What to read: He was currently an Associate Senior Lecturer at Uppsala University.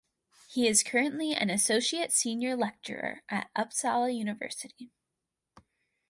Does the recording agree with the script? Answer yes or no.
no